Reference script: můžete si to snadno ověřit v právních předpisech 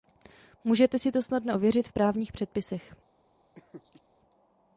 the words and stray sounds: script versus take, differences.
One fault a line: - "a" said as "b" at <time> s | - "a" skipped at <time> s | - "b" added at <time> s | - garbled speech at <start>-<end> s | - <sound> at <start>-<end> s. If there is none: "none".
- laugh at 3.6-4.0 s